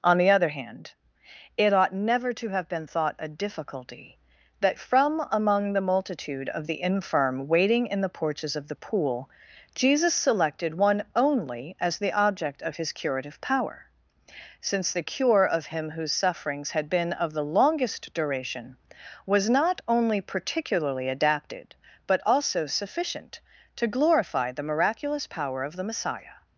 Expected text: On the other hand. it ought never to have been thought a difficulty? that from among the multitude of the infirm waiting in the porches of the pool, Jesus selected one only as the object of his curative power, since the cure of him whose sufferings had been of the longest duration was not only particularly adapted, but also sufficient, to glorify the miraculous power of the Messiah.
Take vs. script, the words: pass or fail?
pass